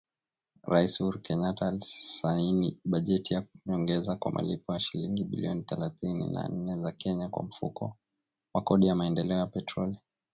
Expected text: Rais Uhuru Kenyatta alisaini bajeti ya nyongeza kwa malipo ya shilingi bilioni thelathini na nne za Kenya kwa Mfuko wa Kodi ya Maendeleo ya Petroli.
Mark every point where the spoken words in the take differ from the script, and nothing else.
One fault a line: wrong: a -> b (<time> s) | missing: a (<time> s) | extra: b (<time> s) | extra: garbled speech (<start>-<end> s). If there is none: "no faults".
no faults